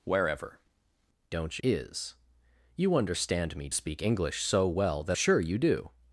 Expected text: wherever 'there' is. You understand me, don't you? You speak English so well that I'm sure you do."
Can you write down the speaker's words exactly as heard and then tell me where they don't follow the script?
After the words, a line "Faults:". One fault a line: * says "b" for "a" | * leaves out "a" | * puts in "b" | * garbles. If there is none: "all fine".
wherever 'don't' is. You understand me, speak English so well that Sure you do."
Faults:
* says "don't" for "there"
* leaves out "don't you You"
* leaves out "I'm"